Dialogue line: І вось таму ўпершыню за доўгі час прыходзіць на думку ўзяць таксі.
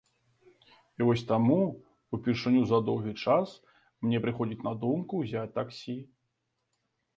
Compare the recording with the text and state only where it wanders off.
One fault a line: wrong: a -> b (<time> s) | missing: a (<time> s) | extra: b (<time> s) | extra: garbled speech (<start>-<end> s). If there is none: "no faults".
extra: мне (4.1 s)